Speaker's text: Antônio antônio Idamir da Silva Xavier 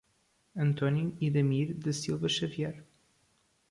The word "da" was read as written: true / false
true